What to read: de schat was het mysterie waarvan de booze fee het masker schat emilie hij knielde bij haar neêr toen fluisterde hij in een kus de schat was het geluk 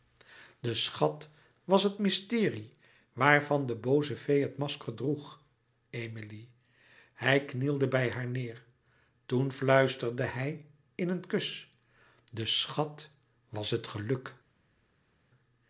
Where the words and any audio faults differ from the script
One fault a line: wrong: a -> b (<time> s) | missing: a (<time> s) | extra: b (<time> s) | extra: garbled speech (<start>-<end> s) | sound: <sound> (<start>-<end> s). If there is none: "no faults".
wrong: schat -> droeg (4.9 s)